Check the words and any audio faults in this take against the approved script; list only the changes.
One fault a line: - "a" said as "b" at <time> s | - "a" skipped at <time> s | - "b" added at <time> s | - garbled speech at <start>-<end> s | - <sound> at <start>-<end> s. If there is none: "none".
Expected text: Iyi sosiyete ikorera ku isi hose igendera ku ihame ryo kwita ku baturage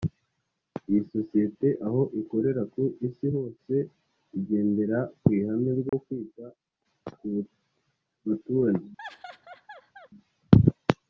- "aho" added at 1.9 s
- dropout at 5.9-5.9 s
- laugh at 9.0-10.1 s